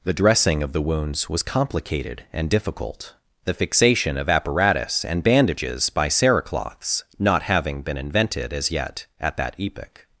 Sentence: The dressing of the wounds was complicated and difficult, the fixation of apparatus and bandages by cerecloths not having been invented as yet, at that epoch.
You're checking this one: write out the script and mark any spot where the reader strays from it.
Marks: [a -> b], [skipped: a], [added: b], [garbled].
The dressing of the wounds was complicated and difficult, the fixation of apparatus and bandages by cerecloths not having been invented as yet, at that epoch.